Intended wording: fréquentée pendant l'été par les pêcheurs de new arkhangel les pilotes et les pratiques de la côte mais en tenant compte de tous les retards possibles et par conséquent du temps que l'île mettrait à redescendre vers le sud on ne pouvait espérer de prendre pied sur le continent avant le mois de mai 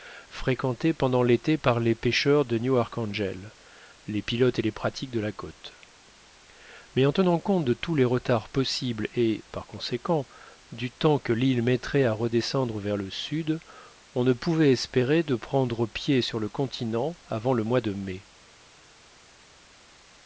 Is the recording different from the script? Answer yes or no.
no